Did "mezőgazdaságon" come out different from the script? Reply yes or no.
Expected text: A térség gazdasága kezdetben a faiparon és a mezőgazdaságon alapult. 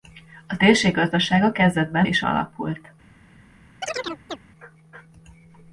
yes